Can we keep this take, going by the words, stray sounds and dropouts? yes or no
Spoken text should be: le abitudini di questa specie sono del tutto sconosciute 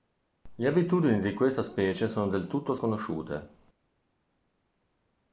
yes